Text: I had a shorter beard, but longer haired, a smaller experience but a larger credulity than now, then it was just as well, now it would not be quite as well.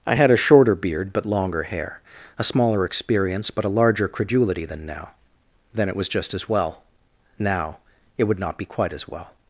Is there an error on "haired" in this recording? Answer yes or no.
yes